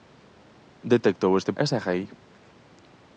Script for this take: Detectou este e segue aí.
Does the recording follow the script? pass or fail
pass